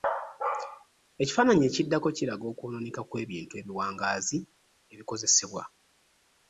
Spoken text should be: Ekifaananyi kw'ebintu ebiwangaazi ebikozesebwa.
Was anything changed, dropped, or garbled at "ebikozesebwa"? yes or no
no